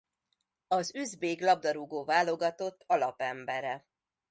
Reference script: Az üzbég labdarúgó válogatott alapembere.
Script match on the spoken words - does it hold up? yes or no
yes